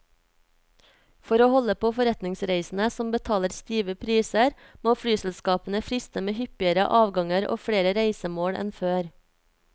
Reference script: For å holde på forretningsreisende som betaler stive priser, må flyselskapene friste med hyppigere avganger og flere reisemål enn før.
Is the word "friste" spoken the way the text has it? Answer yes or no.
yes